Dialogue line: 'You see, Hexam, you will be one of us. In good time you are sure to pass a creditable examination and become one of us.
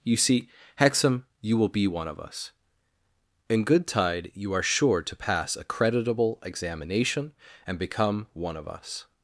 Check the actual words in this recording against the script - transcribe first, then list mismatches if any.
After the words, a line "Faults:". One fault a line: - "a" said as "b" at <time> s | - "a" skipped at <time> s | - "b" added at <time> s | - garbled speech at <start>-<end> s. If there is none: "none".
'You see, Hexam, you will be one of us. In good tide you are sure to pass a creditable examination and become one of us.
Faults:
- "time" said as "tide" at 3.9 s